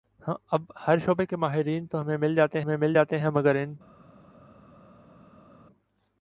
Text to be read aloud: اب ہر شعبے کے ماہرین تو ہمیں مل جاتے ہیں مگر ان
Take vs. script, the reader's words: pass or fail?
fail